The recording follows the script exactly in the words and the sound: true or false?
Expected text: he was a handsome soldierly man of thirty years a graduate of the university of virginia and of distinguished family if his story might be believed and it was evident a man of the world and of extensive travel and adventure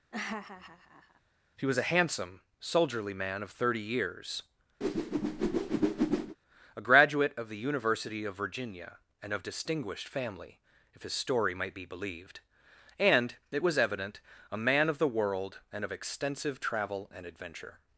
false